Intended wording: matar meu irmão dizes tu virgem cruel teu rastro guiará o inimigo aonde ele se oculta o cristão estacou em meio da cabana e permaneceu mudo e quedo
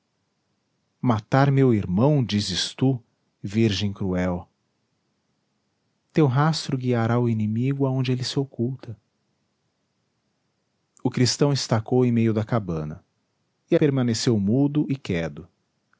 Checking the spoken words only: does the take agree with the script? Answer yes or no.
yes